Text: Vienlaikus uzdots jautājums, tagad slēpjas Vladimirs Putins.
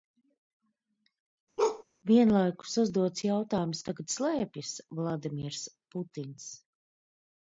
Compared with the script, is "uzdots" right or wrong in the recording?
right